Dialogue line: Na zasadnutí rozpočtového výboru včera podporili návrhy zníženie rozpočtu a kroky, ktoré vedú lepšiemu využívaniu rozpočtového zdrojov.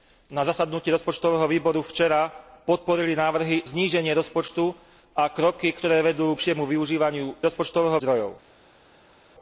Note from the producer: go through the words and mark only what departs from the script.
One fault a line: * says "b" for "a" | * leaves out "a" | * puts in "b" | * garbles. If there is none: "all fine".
all fine